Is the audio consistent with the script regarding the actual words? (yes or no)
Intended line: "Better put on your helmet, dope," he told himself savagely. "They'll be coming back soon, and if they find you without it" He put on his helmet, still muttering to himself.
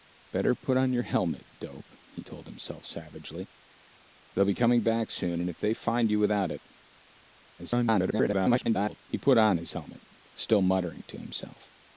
no